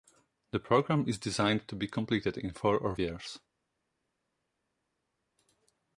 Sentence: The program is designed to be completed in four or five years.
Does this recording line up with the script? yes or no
no